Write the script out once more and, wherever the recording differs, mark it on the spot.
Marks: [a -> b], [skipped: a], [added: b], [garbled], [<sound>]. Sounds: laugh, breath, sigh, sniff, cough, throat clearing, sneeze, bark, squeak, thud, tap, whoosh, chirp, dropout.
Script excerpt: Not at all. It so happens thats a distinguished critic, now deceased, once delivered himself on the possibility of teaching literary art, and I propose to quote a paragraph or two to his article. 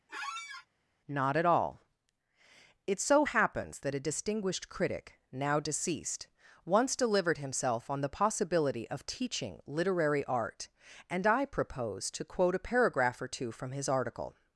[squeak] Not at all. It so happens [thats -> that] a distinguished critic, now deceased, once delivered himself on the possibility of teaching literary art, and I propose to quote a paragraph or two [to -> from] his article.